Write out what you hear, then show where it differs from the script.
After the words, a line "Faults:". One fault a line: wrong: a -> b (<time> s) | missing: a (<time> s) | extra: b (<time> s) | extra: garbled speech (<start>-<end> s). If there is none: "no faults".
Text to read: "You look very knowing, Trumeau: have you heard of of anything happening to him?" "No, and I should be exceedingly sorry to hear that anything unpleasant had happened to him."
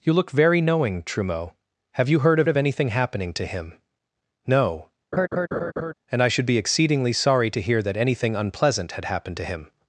"You look very knowing, Trumeau: have you heard of of anything happening to him?" "No, and I should be exceedingly sorry to hear that anything unpleasant had happened to him."
Faults:
no faults